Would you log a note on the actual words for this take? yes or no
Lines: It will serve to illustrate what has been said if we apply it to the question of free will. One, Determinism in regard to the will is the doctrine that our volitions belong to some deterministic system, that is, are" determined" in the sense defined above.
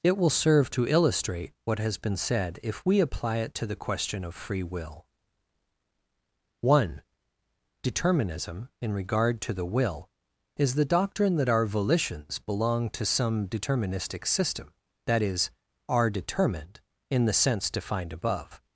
no